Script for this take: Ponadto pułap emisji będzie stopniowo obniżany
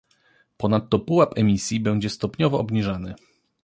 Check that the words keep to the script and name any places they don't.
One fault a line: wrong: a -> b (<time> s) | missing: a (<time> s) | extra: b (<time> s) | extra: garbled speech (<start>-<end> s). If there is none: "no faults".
no faults